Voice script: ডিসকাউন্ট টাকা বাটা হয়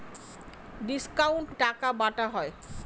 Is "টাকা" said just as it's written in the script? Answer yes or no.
yes